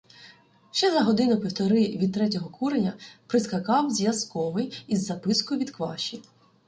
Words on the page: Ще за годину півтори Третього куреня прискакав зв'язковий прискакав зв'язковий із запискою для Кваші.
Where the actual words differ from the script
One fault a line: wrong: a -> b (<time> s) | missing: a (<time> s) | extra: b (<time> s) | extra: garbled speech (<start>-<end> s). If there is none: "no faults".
extra: від (1.9 s)
missing: прискакав зв'язковий (4.8 s)
wrong: для -> від (5.6 s)